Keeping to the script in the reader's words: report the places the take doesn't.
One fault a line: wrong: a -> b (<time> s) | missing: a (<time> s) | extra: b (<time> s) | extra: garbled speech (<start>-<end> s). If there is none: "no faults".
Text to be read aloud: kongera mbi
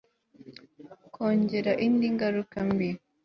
extra: indi ngaruka (1.8 s)